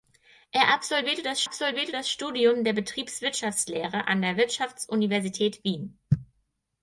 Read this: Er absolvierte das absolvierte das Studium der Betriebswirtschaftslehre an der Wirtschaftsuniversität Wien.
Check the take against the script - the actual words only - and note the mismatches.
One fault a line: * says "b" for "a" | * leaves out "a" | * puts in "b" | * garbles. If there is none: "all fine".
all fine